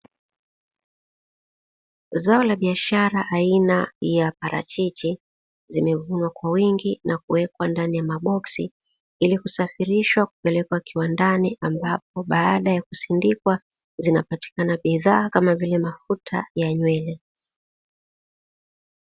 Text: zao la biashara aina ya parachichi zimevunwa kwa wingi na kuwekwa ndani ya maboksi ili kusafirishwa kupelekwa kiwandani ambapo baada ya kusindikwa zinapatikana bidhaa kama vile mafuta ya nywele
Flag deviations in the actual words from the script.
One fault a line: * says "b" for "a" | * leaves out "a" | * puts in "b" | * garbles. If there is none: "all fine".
all fine